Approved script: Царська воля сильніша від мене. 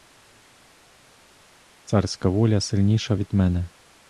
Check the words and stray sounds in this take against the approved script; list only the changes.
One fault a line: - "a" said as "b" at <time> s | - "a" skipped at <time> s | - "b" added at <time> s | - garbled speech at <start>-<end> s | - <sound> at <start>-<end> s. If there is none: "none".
none